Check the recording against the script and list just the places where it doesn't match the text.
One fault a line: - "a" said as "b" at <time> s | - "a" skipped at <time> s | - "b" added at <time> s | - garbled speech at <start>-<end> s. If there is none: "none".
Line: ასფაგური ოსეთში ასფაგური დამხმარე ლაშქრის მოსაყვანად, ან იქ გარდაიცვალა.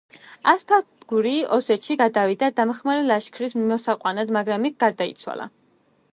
- "ასფაგური" said as "გადავიდა" at 2.0 s
- "ან" said as "მაგრამ" at 4.4 s